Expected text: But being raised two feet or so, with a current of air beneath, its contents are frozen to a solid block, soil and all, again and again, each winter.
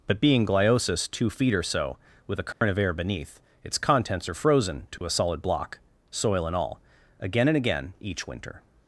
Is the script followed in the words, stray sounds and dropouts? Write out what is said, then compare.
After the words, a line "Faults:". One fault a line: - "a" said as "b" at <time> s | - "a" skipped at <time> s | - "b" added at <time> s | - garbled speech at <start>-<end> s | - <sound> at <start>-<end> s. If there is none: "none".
But being gliosis two feet or so, with a current of air beneath, its contents are frozen to a solid block, soil and all, again and again, each winter.
Faults:
- "raised" said as "gliosis" at 0.5 s
- dropout at 2.5-2.6 s
- dropout at 5.0-5.0 s